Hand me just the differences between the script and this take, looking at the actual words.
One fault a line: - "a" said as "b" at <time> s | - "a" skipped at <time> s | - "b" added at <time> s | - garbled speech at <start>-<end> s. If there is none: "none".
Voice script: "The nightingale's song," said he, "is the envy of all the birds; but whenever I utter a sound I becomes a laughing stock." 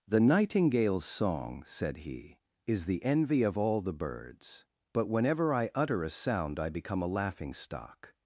- "becomes" said as "become" at 6.7 s